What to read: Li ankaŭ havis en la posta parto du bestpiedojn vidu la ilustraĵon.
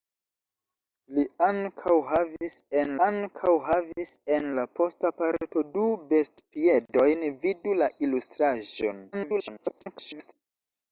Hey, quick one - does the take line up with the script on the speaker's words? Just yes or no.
no